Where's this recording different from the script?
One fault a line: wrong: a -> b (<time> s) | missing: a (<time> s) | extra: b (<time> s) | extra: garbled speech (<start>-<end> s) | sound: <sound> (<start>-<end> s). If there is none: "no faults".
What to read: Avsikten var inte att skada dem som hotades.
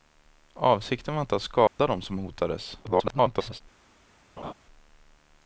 sound: dropout (1.7-1.8 s)
extra: garbled speech (2.8-3.6 s)
sound: laugh (4.4-4.5 s)